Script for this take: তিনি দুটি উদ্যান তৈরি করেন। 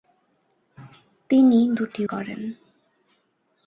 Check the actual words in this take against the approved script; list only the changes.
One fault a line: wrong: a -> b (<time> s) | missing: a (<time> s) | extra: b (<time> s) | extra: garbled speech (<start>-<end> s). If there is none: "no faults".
missing: উদ্যান তৈরি (2.0 s)